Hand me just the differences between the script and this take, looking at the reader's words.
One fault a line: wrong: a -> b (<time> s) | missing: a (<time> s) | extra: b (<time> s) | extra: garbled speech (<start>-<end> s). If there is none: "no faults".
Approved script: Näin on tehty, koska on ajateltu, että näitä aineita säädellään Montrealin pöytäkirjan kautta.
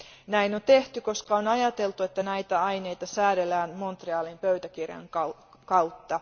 no faults